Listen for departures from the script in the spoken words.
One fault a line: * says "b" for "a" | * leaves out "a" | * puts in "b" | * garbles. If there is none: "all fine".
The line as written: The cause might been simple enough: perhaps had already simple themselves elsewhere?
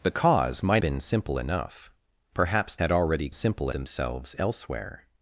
all fine